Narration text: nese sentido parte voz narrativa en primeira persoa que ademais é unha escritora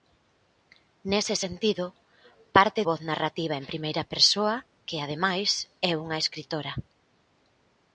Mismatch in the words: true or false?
false